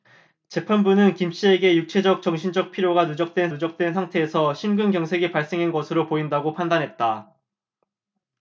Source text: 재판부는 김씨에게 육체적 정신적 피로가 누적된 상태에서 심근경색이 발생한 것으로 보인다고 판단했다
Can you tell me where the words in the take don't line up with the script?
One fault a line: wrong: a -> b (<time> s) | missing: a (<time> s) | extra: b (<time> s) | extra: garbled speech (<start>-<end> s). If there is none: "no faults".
extra: 누적된 (3.5 s)